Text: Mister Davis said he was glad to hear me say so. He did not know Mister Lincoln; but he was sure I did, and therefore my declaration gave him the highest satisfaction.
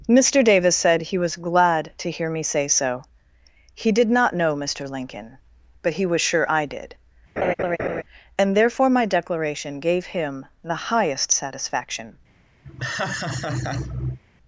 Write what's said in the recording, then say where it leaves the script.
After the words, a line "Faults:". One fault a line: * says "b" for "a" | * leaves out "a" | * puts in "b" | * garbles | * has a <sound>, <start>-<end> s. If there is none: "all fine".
Mister Davis said he was glad to hear me say so. He did not know Mister Lincoln; but he was sure I did, and therefore my declaration gave him the highest satisfaction.
Faults:
* has a laugh, 7.4-8.0 s
* has a laugh, 12.6-14.2 s